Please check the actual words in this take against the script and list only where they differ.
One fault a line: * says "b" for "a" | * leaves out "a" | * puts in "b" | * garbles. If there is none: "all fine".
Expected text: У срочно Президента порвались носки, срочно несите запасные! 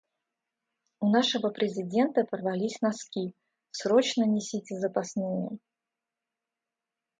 * says "нашего" for "срочно"